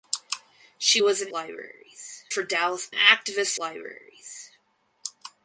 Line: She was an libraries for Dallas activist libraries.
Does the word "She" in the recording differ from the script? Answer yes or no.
no